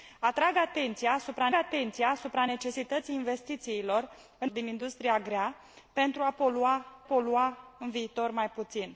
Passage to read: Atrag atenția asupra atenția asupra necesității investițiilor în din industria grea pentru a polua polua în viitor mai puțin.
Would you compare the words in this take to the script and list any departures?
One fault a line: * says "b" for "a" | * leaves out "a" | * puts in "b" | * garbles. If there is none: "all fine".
all fine